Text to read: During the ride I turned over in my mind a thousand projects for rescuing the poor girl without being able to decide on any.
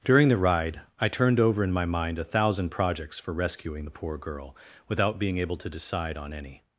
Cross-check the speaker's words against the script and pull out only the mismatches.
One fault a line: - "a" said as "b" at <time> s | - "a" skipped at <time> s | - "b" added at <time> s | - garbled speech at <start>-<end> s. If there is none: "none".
none